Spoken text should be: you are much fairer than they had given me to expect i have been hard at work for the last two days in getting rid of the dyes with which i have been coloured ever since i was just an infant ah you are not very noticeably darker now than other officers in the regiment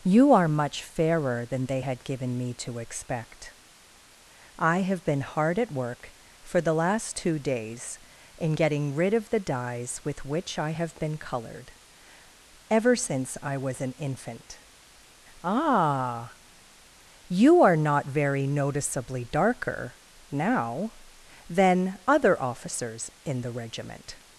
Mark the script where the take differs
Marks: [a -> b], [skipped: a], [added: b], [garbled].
you are much fairer than they had given me to expect i have been hard at work for the last two days in getting rid of the dyes with which i have been coloured ever since i was [skipped: just] an infant ah you are not very noticeably darker now than other officers in the regiment